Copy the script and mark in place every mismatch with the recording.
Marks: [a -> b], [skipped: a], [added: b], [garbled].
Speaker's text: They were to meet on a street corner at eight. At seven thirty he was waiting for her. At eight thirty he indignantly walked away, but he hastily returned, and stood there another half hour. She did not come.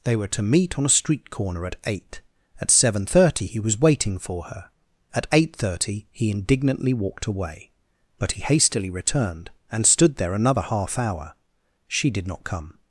They were to meet on a street corner at eight. At seven thirty he was waiting for her. At eight thirty he indignantly walked away, but he hastily returned, and stood there another half hour. She did not come.